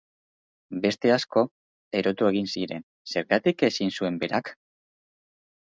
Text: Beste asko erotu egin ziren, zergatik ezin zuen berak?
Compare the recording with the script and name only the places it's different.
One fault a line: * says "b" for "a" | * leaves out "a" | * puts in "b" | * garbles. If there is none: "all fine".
all fine